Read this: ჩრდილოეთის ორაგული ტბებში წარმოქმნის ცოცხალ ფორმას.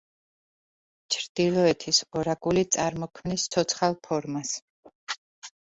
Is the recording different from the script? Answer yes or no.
yes